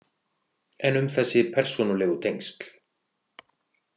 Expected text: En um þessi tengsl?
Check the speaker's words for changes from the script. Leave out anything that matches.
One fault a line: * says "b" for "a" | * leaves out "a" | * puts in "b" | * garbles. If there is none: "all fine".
* puts in "persónulegu"